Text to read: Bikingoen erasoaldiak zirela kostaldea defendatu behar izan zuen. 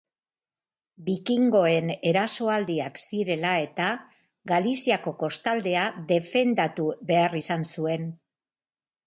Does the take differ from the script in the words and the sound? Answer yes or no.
yes